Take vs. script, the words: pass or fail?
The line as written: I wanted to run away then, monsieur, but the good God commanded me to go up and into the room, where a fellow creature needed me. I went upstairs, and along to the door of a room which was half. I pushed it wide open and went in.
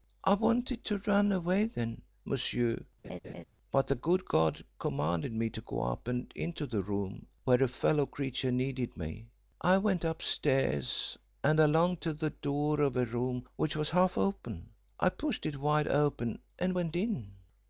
fail